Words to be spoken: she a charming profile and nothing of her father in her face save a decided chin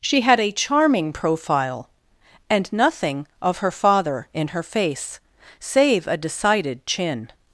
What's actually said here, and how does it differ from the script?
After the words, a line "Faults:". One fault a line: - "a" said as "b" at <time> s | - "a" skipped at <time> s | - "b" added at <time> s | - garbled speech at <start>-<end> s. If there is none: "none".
she had a charming profile and nothing of her father in her face save a decided chin
Faults:
- "had" added at 0.2 s